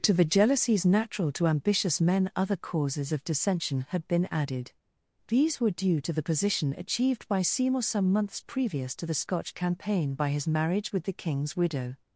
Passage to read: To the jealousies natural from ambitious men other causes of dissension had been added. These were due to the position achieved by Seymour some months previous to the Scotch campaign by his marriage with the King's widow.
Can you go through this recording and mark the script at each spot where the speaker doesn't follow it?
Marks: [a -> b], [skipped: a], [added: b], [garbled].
To the jealousies natural [from -> to] ambitious men other causes of dissension had been added. These were due to the position achieved by Seymour some months previous to the Scotch campaign by his marriage with the King's widow.